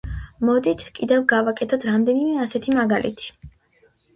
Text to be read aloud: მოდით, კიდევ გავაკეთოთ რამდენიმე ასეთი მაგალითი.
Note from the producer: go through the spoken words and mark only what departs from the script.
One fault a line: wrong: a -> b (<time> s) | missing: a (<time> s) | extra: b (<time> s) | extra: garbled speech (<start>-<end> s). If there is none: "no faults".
no faults